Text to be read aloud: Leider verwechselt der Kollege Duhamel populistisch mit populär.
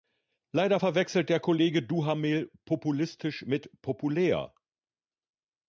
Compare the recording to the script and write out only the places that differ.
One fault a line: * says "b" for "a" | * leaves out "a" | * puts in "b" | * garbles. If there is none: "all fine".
all fine